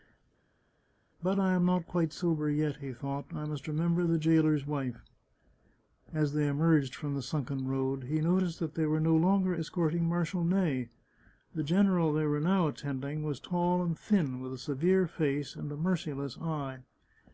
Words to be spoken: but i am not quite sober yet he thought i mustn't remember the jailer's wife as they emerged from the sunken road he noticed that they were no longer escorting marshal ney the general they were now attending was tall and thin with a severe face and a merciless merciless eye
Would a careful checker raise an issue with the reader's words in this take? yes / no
yes